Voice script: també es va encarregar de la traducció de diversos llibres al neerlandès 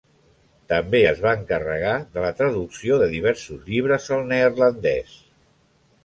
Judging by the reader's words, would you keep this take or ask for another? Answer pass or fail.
pass